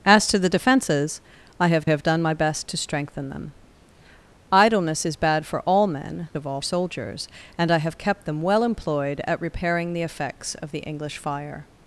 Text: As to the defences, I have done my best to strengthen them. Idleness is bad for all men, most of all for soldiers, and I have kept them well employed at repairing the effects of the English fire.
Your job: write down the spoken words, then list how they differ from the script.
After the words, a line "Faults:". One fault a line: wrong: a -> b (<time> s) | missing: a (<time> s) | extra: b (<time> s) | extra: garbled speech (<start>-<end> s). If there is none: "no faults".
As to the defences, I have have done my best to strengthen them. Idleness is bad for all men, of all soldiers, and I have kept them well employed at repairing the effects of the English fire.
Faults:
extra: have (1.8 s)
missing: most (6.3 s)
missing: for (6.6 s)